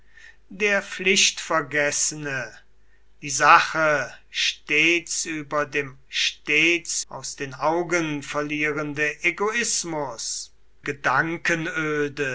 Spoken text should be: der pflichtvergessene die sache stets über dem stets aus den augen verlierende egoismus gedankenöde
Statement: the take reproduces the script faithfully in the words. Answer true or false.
true